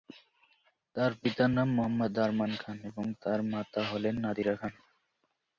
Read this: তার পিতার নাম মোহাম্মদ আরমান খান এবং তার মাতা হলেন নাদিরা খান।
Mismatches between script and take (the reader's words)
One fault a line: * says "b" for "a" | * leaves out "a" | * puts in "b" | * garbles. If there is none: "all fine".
all fine